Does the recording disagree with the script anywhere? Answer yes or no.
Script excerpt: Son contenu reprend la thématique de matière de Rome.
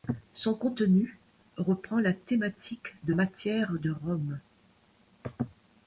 no